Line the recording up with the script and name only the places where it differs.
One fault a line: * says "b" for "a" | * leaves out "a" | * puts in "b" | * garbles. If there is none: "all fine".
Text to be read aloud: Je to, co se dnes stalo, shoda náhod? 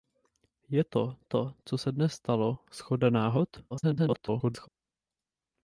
* puts in "to"
* garbles